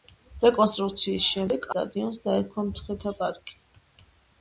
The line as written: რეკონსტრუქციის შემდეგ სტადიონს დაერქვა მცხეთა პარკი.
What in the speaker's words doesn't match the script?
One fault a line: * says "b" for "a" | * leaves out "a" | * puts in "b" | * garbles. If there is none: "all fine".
all fine